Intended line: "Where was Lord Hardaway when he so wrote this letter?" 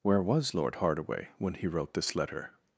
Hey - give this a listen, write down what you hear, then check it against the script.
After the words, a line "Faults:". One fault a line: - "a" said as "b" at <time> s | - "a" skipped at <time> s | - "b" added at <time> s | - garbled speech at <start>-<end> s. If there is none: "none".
"Where was Lord Hardaway when he wrote this letter?"
Faults:
- "so" skipped at 1.7 s